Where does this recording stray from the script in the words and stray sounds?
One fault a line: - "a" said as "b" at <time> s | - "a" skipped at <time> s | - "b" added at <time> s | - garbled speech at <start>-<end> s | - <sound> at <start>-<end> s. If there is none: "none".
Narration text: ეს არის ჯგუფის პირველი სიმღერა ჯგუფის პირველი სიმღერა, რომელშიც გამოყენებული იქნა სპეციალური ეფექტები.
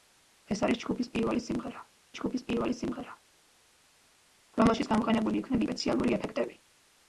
none